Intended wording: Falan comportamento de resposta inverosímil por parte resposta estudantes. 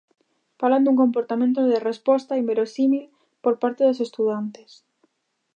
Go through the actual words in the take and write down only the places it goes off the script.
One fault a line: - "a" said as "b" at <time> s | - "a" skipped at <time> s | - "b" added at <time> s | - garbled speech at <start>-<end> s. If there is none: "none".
- "dun" added at 0.8 s
- "resposta" said as "dos" at 3.9 s